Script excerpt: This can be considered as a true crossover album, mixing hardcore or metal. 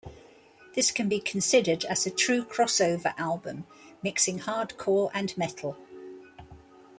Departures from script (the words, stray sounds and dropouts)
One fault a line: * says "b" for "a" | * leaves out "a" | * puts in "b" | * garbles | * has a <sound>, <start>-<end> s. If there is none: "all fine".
* says "and" for "or"